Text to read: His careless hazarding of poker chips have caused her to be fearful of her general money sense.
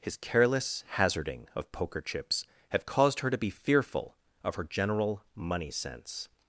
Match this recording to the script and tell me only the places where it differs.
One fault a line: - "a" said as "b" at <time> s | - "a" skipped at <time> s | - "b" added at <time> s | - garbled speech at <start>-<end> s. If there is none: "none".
none